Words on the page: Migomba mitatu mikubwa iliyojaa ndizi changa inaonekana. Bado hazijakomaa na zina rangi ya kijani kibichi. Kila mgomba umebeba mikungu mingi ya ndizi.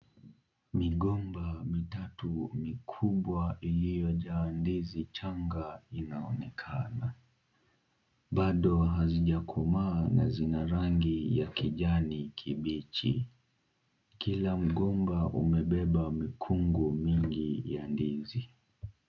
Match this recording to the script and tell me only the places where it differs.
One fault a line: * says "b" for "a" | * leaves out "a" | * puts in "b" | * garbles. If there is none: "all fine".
all fine